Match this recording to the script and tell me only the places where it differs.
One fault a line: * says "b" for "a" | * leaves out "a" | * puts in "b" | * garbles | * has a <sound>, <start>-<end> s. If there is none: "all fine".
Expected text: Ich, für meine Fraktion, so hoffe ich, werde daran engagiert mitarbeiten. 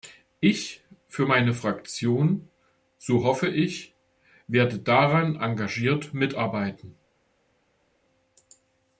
all fine